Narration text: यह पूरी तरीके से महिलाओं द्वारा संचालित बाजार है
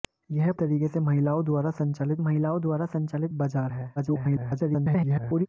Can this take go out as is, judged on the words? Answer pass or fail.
fail